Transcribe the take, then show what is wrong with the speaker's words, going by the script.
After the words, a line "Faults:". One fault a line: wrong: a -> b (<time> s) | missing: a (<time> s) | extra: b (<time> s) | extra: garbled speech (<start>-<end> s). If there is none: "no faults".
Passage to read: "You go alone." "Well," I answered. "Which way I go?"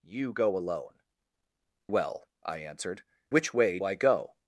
"You go alone." "Well," I answered. "Which way I go?"
Faults:
no faults